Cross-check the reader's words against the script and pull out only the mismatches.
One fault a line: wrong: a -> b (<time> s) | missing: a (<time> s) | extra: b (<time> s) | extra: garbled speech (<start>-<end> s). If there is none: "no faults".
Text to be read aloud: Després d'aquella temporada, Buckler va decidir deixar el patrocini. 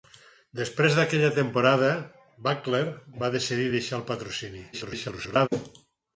extra: garbled speech (4.7-5.5 s)